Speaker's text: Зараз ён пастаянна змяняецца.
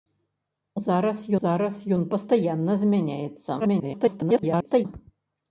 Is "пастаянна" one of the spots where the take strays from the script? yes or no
no